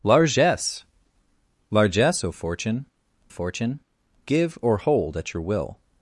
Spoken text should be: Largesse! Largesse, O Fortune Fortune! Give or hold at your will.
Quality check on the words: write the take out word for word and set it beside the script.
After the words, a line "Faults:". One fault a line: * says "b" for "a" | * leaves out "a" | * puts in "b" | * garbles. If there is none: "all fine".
Largesse! Largesse, O Fortune Fortune! Give or hold at your will.
Faults:
all fine